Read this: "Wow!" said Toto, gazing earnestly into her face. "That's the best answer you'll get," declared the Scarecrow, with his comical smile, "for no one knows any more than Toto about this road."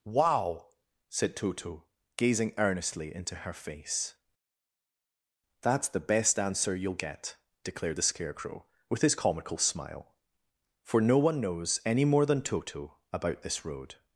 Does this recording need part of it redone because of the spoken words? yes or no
no